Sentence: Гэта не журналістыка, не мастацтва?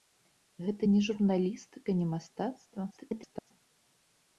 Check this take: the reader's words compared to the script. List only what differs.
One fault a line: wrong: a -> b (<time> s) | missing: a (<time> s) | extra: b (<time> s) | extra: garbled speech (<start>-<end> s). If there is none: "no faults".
extra: garbled speech (2.9-3.5 s)